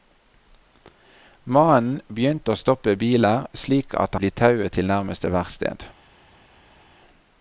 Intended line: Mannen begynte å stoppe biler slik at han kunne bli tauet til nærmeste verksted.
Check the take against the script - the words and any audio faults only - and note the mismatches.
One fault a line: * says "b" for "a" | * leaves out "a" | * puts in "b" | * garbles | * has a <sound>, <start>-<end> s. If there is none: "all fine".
* leaves out "han kunne"